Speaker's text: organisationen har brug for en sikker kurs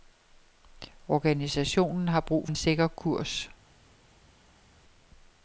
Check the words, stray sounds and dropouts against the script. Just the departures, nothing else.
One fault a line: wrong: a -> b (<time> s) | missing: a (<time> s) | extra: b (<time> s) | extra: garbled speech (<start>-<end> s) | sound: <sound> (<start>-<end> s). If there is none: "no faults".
missing: for (2.5 s)